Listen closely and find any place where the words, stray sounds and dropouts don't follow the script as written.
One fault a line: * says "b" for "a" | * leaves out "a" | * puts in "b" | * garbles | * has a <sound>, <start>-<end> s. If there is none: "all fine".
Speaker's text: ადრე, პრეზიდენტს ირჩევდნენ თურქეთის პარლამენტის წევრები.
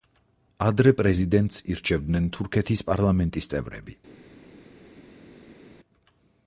all fine